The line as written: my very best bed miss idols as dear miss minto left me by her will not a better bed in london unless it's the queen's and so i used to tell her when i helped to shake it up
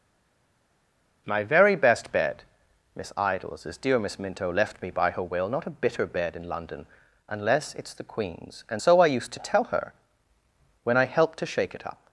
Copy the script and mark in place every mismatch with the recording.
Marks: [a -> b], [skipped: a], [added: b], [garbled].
my very best bed miss idols as dear miss minto left me by her will not a [better -> bitter] bed in london unless it's the queen's and so i used to tell her when i helped to shake it up